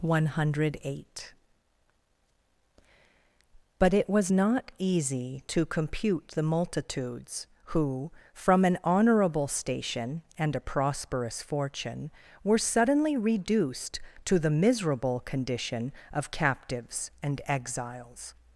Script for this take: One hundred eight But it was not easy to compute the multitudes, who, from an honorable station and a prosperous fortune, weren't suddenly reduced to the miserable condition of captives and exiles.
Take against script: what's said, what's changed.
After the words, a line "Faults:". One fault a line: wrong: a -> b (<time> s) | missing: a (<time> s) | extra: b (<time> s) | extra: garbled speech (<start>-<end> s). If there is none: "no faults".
One hundred eight But it was not easy to compute the multitudes, who, from an honorable station and a prosperous fortune, were suddenly reduced to the miserable condition of captives and exiles.
Faults:
wrong: weren't -> were (12.4 s)